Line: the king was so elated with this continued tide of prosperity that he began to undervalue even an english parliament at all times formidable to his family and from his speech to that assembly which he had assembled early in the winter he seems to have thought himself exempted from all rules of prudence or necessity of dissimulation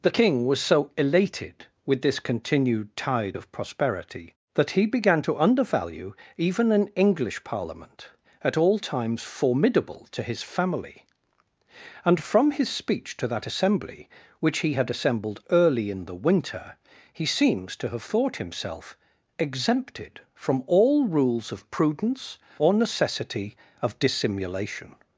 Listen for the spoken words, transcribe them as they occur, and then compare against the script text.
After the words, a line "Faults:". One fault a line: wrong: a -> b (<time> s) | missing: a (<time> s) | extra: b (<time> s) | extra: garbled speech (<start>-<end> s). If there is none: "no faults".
the king was so elated with this continued tide of prosperity that he began to undervalue even an english parliament at all times formidable to his family and from his speech to that assembly which he had assembled early in the winter he seems to have thought himself exempted from all rules of prudence or necessity of dissimulation
Faults:
no faults